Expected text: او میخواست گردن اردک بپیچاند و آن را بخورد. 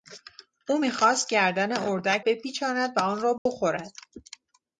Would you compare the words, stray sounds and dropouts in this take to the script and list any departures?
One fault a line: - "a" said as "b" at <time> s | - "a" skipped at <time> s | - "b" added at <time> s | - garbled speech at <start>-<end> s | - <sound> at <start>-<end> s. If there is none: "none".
- dropout at 3.4-3.5 s